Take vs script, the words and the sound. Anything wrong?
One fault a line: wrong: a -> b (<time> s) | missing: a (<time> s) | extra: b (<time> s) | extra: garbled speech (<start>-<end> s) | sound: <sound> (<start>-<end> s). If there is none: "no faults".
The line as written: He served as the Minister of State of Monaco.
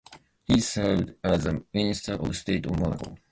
no faults